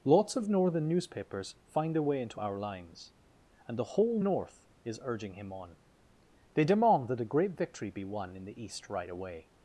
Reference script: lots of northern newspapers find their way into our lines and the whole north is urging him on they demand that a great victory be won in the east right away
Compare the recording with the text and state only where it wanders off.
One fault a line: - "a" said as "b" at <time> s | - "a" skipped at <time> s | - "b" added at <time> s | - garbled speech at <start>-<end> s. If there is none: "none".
none